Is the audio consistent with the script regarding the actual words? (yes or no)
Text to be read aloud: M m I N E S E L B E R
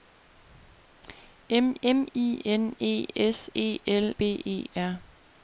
yes